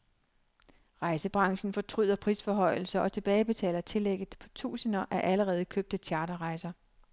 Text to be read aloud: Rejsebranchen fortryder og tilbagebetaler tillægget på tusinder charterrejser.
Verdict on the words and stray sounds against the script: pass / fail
fail